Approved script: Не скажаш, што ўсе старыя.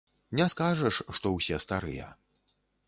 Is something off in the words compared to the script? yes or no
no